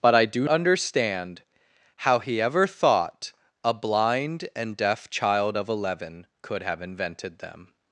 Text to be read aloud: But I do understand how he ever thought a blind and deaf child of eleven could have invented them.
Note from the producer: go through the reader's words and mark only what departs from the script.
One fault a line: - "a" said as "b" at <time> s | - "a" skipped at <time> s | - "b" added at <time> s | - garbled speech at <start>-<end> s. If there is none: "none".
none